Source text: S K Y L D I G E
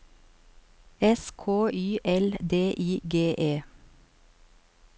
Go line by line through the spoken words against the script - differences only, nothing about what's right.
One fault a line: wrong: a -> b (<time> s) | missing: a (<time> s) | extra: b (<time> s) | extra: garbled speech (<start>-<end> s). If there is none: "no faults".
no faults